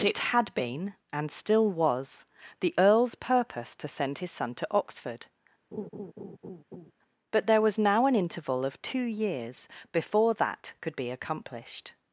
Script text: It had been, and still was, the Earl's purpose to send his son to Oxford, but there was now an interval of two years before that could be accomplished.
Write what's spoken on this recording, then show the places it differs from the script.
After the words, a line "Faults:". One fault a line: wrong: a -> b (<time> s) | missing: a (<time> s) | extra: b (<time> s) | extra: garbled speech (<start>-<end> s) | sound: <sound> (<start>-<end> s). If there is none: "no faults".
It had been, and still was, the Earl's purpose to send his son to Oxford, but there was now an interval of two years before that could be accomplished.
Faults:
sound: laugh (5.7-6.9 s)